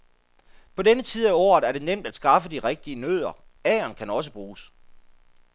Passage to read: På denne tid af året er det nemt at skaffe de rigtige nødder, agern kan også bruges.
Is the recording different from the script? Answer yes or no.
no